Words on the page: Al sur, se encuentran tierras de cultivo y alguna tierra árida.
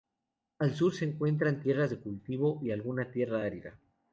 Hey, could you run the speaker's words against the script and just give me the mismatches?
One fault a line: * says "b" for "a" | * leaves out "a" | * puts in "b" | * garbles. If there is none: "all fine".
all fine